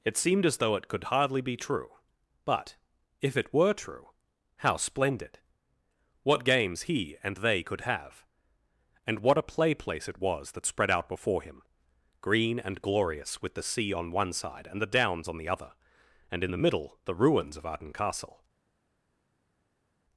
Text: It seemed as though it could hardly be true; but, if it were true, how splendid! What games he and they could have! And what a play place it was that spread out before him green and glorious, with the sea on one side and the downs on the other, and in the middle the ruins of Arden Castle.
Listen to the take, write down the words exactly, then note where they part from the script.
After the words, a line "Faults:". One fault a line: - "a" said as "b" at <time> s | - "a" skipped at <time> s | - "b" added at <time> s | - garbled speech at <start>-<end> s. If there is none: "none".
It seemed as though it could hardly be true; but, if it were true, how splendid! What games he and they could have! And what a play place it was that spread out before him green and glorious, with the sea on one side and the downs on the other, and in the middle the ruins of Arden Castle.
Faults:
none